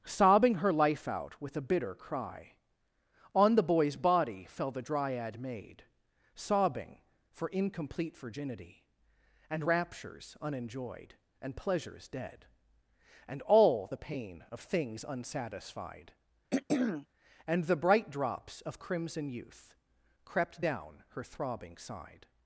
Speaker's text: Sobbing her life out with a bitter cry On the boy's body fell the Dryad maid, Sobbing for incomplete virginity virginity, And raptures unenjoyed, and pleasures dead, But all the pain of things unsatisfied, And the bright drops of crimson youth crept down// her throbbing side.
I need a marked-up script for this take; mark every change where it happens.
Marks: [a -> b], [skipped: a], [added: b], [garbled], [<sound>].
Sobbing her life out with a bitter cry On the boy's body fell the Dryad maid, Sobbing for incomplete virginity [skipped: virginity,] And raptures unenjoyed, and pleasures dead, [But -> And] all the pain of things unsatisfied, [throat clearing] And the bright drops of crimson youth crept down// her throbbing side.